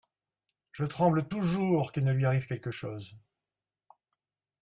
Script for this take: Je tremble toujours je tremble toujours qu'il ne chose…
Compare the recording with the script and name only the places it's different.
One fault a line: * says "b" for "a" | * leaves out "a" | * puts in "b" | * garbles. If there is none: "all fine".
* says "qu'il ne lui arrive quelque" for "je tremble toujours qu'il ne"